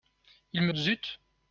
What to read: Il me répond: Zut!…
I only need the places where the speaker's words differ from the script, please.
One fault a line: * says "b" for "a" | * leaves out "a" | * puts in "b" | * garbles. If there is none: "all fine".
* leaves out "répond"